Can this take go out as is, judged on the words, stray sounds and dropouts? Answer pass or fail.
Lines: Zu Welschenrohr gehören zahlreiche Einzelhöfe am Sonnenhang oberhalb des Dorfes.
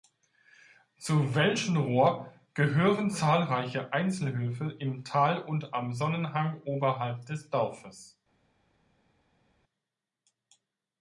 fail